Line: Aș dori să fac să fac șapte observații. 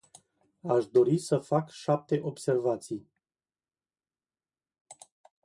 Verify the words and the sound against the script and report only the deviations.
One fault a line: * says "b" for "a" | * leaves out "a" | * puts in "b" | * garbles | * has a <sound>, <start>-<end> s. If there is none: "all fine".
* leaves out "să fac"